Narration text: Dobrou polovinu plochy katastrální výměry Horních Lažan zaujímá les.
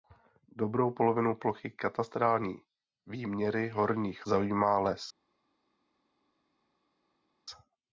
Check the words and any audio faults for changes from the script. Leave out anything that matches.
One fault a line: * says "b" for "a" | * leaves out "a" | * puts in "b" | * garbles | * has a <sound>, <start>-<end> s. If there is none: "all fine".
* leaves out "Lažan"